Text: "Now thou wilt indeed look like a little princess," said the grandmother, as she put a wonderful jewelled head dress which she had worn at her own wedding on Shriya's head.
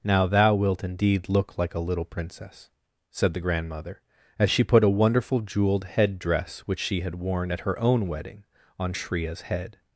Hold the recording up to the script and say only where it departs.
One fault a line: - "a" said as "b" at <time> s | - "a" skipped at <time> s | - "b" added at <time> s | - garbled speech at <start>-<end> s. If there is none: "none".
none